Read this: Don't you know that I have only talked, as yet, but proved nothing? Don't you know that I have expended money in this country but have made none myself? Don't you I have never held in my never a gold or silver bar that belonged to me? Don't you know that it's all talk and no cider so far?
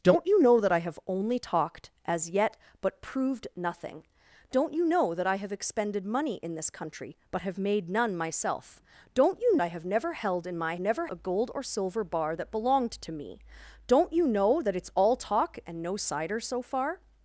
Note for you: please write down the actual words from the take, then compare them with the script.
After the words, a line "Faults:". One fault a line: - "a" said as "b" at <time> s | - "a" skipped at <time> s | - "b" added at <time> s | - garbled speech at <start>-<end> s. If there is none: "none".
Don't you know that I have only talked, as yet, but proved nothing? Don't you know that I have expended money in this country but have made none myself? Don't you I have never held in my never a gold or silver bar that belonged to me? Don't you know that it's all talk and no cider so far?
Faults:
none